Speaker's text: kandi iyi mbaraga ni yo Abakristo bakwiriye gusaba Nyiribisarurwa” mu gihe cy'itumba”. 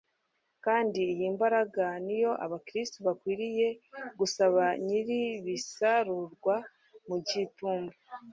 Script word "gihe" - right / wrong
wrong